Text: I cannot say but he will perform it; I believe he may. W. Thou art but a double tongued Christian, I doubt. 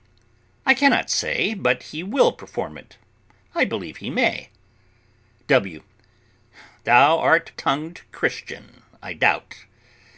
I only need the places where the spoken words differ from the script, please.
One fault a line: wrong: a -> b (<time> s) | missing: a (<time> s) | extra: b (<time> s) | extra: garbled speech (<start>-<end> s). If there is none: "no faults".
missing: but a double (7.5 s)